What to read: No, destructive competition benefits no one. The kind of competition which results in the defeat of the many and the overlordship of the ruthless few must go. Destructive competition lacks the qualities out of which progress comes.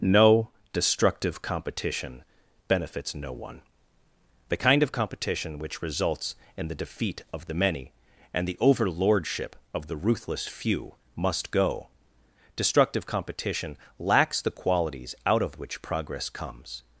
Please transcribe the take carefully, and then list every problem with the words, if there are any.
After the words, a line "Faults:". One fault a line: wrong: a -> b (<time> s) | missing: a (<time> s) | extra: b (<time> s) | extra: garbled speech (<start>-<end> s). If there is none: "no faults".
No, destructive competition benefits no one. The kind of competition which results in the defeat of the many and the overlordship of the ruthless few must go. Destructive competition lacks the qualities out of which progress comes.
Faults:
no faults